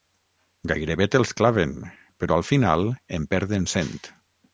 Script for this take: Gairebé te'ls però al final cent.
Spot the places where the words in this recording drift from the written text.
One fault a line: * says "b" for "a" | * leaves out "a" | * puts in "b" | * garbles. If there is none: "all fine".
* puts in "claven"
* puts in "en perden"